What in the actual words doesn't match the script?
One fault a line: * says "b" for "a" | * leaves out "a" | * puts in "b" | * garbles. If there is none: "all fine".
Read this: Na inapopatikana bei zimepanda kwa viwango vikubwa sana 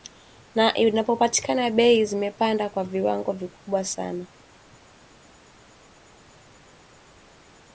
all fine